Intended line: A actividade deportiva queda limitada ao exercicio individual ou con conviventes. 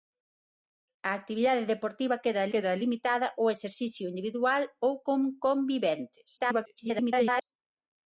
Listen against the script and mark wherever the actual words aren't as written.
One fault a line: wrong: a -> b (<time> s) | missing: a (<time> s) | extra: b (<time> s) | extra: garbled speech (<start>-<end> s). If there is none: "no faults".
extra: queda (2.5 s)
extra: garbled speech (6.4-7.4 s)